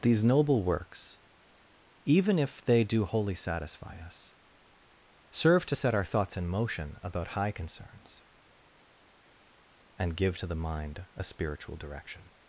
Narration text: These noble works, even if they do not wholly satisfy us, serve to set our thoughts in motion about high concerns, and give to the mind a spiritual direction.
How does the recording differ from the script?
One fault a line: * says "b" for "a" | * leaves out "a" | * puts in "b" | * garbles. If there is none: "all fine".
* leaves out "not"